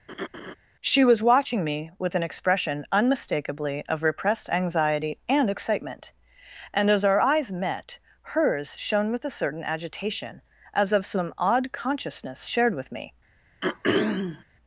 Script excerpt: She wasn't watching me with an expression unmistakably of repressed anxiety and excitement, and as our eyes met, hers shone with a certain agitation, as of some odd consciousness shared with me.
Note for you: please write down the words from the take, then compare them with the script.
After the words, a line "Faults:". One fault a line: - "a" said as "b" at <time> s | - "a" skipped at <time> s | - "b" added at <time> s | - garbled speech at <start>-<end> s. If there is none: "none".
She was watching me with an expression unmistakably of repressed anxiety and excitement, and as our eyes met, hers shone with a certain agitation, as of some odd consciousness shared with me.
Faults:
- "wasn't" said as "was" at 1.0 s